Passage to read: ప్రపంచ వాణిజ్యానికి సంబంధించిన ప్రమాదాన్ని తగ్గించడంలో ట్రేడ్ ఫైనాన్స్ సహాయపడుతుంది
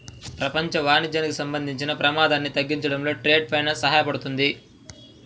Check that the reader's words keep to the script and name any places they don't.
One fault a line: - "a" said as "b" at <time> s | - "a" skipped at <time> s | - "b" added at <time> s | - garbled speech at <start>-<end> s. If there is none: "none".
none